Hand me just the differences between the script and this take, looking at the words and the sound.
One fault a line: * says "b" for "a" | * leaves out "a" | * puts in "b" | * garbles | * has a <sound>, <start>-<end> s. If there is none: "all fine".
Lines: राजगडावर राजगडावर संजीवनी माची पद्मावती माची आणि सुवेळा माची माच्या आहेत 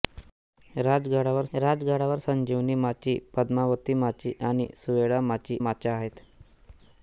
all fine